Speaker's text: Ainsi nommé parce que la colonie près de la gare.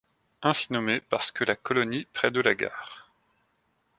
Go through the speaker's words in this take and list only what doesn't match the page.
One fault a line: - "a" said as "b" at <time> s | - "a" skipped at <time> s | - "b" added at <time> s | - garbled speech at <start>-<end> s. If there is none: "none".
none